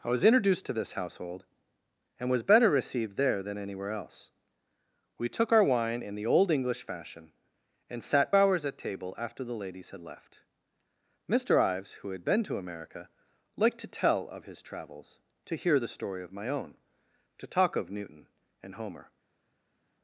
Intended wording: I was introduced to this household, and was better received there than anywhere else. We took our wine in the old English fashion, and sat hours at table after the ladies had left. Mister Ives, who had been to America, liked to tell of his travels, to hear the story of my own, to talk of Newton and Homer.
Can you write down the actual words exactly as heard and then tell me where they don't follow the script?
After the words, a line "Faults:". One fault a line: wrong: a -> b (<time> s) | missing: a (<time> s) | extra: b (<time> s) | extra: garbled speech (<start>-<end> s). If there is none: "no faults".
I was introduced to this household, and was better received there than anywhere else. We took our wine in the old English fashion, and sat hours at table after the ladies had left. Mister Ives, who had been to America, liked to tell of his travels, to hear the story of my own, to talk of Newton and Homer.
Faults:
no faults